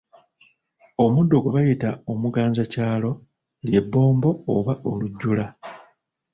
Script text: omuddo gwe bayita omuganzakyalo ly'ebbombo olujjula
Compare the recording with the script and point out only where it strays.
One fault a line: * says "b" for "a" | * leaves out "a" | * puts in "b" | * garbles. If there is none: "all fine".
* puts in "oba"